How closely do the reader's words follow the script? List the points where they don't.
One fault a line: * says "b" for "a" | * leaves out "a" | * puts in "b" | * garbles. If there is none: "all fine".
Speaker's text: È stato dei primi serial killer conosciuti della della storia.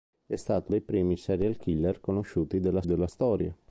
all fine